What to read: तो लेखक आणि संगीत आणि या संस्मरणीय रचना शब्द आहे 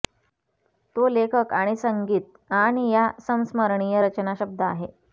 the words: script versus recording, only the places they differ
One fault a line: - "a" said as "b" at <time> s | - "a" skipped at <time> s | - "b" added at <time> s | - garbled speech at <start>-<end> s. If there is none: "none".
none